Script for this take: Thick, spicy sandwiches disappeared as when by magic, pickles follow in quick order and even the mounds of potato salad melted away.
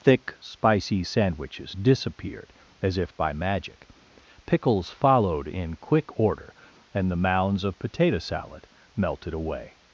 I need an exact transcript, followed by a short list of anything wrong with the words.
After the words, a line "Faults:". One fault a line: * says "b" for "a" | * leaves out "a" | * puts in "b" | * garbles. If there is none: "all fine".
Thick, spicy sandwiches disappeared as if by magic, pickles followed in quick order and the mounds of potato salad melted away.
Faults:
* says "if" for "when"
* says "followed" for "follow"
* leaves out "even"